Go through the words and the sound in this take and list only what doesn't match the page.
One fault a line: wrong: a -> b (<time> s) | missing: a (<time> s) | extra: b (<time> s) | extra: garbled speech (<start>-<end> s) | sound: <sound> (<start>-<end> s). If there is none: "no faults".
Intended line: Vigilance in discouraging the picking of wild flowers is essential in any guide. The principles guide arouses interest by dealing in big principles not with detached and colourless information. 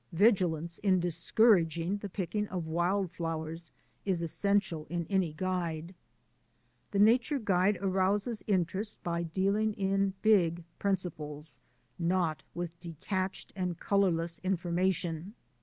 wrong: principles -> nature (7.0 s)